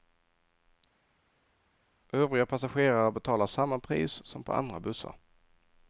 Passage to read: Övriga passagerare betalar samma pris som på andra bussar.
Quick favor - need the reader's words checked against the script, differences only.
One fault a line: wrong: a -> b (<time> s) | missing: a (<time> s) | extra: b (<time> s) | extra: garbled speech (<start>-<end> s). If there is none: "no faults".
no faults